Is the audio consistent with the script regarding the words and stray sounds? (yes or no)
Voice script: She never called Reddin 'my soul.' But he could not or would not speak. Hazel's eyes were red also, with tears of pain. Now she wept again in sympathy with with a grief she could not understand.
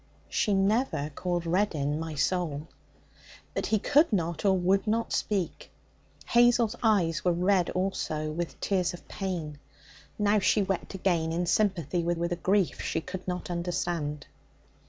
yes